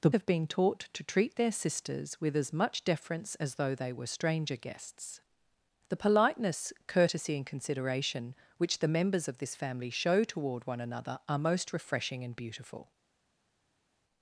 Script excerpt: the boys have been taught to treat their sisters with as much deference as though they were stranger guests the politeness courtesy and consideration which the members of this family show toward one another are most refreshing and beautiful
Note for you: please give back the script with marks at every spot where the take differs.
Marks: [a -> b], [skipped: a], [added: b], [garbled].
the [skipped: boys] have been taught to treat their sisters with as much deference as though they were stranger guests the politeness courtesy and consideration which the members of this family show toward one another are most refreshing and beautiful